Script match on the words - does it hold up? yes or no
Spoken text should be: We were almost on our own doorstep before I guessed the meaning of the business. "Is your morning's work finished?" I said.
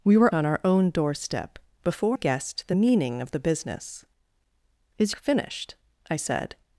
no